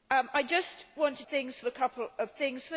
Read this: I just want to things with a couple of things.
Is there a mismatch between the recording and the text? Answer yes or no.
no